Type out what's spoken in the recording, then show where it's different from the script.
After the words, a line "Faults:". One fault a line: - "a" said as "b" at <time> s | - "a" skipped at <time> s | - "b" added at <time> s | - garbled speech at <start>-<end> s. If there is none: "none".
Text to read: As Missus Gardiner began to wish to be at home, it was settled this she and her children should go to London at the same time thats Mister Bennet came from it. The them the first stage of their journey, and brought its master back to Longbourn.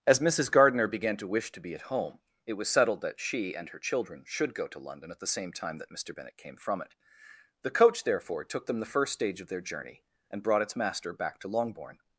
As Missus Gardiner began to wish to be at home, it was settled that she and her children should go to London at the same time that Mister Bennet came from it. The coach, therefore, took them the first stage of their journey, and brought its master back to Longbourn.
Faults:
- "this" said as "that" at 3.0 s
- "thats" said as "that" at 5.8 s
- "coach therefore took" added at 7.7 s